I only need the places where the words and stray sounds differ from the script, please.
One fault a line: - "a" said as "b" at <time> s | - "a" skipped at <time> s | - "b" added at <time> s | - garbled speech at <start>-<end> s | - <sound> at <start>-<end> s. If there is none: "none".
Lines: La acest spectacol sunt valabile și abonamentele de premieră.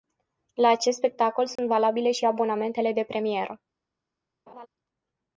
- dropout at 1.6-1.6 s
- laugh at 4.5-4.7 s